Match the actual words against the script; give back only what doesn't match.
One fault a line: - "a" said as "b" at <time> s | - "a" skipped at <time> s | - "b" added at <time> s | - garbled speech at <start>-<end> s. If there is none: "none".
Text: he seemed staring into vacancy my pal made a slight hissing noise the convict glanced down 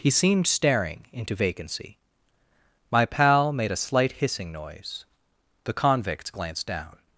- "convict" said as "convicts" at 5.7 s